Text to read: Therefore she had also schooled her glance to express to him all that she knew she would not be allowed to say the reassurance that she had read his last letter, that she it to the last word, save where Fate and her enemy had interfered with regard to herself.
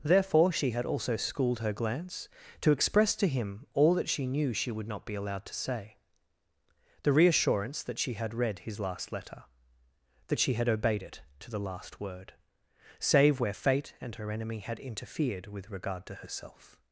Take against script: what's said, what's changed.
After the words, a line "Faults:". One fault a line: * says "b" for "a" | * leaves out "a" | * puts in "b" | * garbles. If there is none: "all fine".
Therefore she had also schooled her glance to express to him all that she knew she would not be allowed to say the reassurance that she had read his last letter, that she had obeyed it to the last word, save where Fate and her enemy had interfered with regard to herself.
Faults:
* puts in "had obeyed"